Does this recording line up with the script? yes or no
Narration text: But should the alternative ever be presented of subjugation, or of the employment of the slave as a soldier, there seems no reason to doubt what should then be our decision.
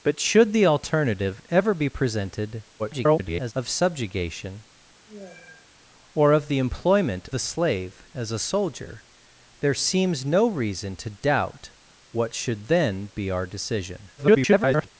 no